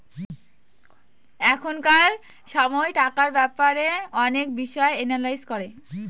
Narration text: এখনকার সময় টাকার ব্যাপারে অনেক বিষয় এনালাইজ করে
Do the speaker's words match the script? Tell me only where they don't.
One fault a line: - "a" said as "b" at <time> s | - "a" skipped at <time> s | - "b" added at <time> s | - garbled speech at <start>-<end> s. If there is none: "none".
none